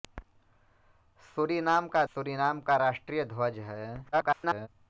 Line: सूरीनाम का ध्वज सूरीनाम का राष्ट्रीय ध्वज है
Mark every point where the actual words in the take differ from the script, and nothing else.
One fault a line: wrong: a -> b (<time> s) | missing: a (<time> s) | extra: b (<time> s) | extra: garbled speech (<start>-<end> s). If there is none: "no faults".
missing: ध्वज (2.0 s)
extra: garbled speech (4.1-4.7 s)